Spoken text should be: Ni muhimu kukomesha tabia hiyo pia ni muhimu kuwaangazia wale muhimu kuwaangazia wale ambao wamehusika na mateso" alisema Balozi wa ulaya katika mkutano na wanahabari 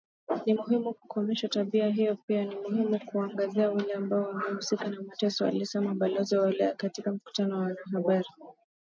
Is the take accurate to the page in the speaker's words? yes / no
no